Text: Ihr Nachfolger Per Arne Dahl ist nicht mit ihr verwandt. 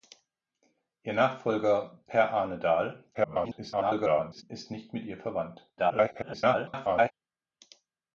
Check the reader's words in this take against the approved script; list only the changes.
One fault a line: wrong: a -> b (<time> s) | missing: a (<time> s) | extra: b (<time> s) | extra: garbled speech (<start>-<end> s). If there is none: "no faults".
extra: garbled speech (3.1-4.4 s)
extra: garbled speech (5.8-7.1 s)